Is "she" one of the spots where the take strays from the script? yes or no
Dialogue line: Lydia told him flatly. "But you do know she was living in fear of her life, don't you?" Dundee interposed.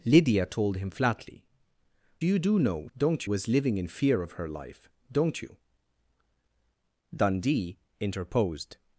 yes